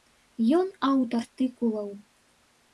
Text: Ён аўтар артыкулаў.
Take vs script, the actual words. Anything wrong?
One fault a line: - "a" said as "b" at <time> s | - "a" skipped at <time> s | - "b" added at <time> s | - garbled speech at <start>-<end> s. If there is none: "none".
none